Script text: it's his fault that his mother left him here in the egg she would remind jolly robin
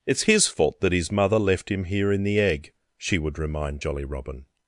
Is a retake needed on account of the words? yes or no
no